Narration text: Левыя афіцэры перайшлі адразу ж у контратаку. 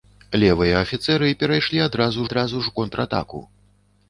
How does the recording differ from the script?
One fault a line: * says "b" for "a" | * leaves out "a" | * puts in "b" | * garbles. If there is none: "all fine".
* puts in "адразу"